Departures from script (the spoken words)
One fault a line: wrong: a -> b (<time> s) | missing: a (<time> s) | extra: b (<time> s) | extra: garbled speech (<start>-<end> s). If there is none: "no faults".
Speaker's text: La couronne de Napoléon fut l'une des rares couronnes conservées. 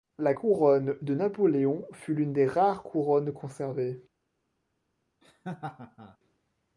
no faults